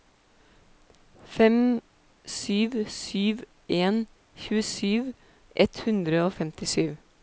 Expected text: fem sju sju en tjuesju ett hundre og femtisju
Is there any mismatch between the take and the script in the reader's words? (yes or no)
no